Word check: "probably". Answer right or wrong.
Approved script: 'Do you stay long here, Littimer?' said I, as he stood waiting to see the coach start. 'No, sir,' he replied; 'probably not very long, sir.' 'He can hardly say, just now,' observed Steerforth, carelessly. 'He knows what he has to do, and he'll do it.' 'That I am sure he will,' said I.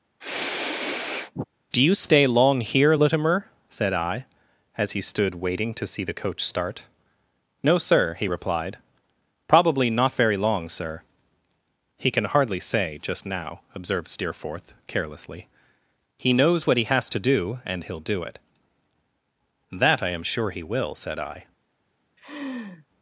right